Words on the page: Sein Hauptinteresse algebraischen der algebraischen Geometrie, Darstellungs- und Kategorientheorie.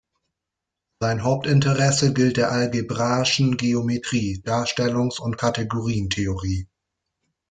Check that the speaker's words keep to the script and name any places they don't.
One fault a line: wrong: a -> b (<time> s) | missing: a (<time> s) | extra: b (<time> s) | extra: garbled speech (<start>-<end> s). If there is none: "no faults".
wrong: algebraischen -> gilt (2.1 s)